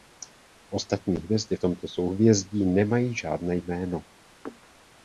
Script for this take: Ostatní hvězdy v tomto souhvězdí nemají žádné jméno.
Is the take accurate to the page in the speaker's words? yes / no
yes